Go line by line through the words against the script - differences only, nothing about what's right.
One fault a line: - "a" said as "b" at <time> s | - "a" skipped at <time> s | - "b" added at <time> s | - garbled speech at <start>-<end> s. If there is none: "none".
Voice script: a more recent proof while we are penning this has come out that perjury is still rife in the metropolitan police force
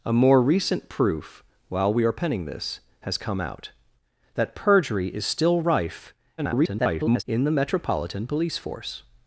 - garbled speech at 6.4-7.2 s